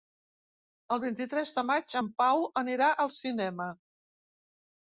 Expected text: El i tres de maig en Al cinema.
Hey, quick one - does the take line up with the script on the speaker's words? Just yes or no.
no